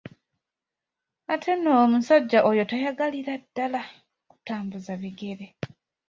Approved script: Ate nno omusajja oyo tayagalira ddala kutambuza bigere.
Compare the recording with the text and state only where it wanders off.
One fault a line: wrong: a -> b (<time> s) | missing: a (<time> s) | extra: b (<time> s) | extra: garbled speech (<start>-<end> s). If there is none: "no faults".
no faults